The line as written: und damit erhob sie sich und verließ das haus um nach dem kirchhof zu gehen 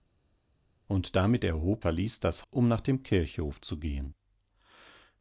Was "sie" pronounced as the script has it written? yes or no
no